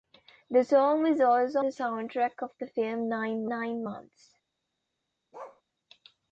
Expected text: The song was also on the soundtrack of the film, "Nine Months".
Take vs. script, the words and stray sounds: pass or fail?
fail